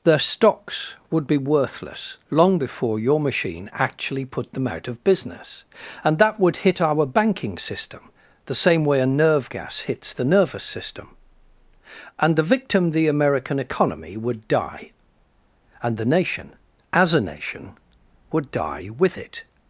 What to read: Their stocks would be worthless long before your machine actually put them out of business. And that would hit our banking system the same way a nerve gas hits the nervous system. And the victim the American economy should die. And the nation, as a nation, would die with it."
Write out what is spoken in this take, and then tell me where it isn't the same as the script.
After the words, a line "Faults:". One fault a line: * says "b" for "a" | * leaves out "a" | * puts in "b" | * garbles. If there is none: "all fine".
Their stocks would be worthless long before your machine actually put them out of business. And that would hit our banking system the same way a nerve gas hits the nervous system. And the victim the American economy would die. And the nation, as a nation, would die with it."
Faults:
* says "would" for "should"